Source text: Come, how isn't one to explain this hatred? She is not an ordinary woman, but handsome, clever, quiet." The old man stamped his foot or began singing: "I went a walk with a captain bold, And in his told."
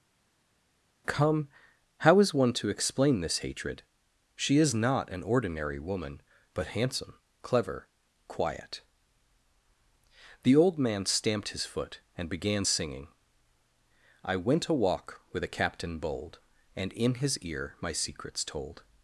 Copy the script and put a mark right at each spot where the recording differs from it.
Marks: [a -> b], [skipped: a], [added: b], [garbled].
Come, how [isn't -> is] one to explain this hatred? She is not an ordinary woman, but handsome, clever, quiet." The old man stamped his foot [or -> and] began singing: "I went a walk with a captain bold, And in his [added: ear my secrets] told."